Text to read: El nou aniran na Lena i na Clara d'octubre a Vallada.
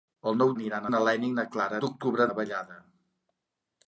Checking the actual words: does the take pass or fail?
pass